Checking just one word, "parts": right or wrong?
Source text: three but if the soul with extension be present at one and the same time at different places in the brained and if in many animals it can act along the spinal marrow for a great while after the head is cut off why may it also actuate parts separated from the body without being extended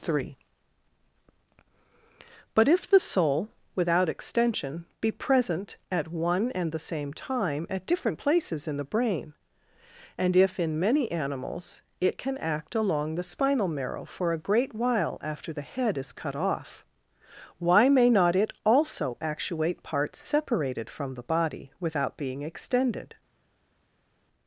right